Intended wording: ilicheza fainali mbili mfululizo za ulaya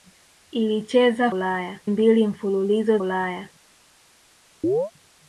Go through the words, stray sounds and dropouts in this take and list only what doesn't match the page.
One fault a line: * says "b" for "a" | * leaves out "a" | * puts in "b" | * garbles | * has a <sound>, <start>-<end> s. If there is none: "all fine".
* says "ulaya" for "fainali"
* leaves out "za"
* has a chirp, 4.6-4.9 s